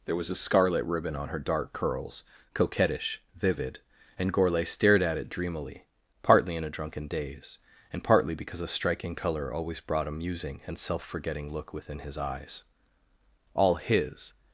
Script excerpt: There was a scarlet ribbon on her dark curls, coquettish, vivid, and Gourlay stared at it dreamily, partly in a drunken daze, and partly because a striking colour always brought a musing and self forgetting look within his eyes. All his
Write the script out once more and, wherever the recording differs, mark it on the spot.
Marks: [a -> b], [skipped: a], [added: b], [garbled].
There was a scarlet ribbon on her dark curls, coquettish, vivid, and Gourlay stared at it dreamily, partly in a drunken daze, and partly because a striking colour always brought a musing and self forgetting look within his eyes. All his